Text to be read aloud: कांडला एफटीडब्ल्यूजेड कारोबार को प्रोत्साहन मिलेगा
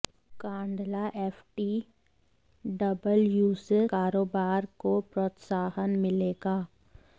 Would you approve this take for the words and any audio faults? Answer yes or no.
yes